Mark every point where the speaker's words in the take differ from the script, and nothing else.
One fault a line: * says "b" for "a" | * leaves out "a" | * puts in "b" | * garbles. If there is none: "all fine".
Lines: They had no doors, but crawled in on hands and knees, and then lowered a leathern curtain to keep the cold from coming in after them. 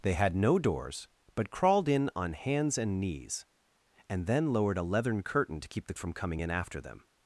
* leaves out "cold"